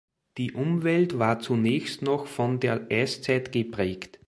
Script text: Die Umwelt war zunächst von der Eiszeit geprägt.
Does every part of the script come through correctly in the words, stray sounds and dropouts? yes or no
no